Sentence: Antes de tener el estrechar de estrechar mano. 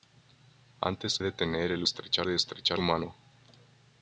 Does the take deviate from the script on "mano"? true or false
false